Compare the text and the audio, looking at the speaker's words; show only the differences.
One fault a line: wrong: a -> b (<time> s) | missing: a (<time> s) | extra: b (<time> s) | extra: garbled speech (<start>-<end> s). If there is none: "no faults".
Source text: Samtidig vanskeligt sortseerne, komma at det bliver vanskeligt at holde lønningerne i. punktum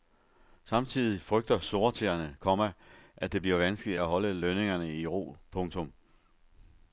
wrong: vanskeligt -> frygter (1.2 s)
extra: ro (5.1 s)